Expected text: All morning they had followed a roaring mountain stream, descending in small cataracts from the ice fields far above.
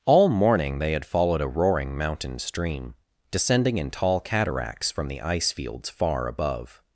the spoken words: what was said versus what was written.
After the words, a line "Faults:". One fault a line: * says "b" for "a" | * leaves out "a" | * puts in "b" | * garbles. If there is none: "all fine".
All morning they had followed a roaring mountain stream, descending in tall cataracts from the ice fields far above.
Faults:
* says "tall" for "small"